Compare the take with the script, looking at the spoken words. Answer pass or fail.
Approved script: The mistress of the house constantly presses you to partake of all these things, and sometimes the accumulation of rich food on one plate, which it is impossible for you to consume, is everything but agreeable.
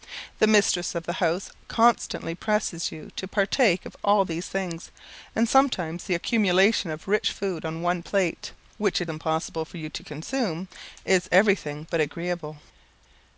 fail